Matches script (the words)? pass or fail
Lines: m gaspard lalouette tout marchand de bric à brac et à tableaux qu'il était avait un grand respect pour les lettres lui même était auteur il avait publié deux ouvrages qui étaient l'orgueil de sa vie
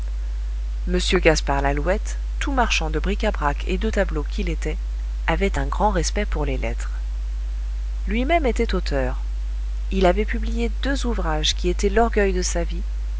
fail